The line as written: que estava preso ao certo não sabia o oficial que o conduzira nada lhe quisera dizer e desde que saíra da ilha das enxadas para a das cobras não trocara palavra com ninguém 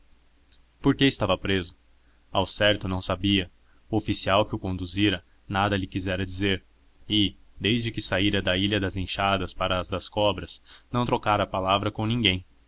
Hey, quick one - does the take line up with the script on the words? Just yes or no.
yes